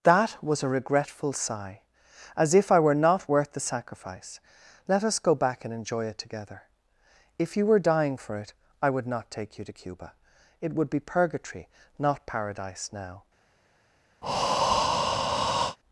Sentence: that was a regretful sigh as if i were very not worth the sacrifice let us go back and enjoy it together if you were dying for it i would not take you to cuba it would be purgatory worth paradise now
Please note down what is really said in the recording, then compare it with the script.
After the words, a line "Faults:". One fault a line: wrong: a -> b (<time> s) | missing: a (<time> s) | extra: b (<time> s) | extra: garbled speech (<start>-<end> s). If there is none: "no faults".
that was a regretful sigh as if i were not worth the sacrifice let us go back and enjoy it together if you were dying for it i would not take you to cuba it would be purgatory not paradise now
Faults:
missing: very (3.0 s)
wrong: worth -> not (12.0 s)